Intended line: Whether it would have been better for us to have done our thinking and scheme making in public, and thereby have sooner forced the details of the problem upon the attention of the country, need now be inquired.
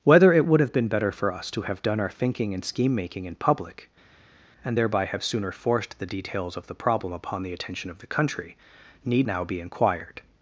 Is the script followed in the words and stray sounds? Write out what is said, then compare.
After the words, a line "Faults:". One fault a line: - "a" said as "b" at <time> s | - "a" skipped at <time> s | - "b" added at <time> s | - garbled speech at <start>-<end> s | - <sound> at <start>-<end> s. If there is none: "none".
Whether it would have been better for us to have done our thinking and scheme making in public, and thereby have sooner forced the details of the problem upon the attention of the country, need now be inquired.
Faults:
none